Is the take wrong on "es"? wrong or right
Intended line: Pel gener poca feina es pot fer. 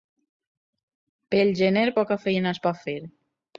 right